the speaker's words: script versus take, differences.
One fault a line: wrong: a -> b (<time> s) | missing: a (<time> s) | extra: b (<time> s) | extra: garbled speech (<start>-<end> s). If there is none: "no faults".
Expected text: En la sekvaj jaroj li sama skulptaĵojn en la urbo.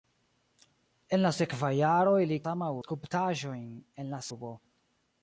no faults